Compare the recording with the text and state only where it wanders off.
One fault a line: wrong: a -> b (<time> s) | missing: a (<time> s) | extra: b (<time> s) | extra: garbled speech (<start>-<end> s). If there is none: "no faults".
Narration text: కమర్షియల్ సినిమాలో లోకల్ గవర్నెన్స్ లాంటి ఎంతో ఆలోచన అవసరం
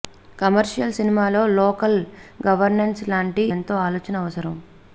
no faults